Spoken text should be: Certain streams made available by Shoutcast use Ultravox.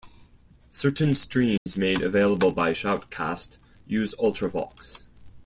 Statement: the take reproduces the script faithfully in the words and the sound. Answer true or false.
false